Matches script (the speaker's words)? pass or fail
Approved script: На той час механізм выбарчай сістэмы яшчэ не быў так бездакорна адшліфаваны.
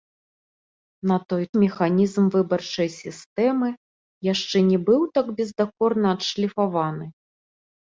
fail